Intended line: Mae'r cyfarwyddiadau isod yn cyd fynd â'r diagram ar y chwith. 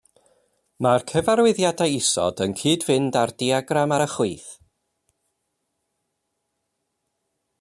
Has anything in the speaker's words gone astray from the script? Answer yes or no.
no